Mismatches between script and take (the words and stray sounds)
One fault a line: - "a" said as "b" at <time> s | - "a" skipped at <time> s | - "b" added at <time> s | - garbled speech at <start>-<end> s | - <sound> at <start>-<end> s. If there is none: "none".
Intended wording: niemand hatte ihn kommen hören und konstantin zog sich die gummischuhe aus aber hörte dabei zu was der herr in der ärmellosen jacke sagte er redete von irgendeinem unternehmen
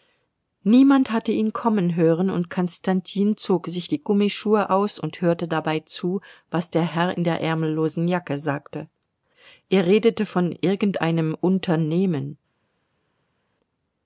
- "aber" said as "und" at 5.0 s